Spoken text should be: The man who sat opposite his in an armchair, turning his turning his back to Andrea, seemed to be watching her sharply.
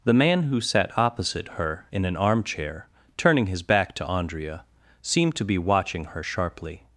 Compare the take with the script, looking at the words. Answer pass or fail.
fail